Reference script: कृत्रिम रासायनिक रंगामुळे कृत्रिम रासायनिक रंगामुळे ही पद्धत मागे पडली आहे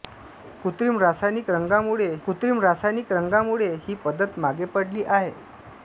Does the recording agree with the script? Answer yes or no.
yes